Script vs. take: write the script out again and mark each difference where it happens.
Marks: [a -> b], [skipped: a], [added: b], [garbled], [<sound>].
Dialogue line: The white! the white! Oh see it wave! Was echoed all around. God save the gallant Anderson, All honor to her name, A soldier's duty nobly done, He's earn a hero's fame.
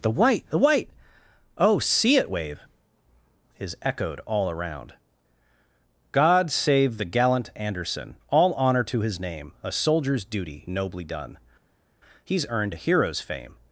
The white! the white! Oh see it wave! [Was -> Is] echoed all around. God save the gallant Anderson, All honor to [her -> his] name, A soldier's duty nobly done, He's [earn -> earned] a hero's fame.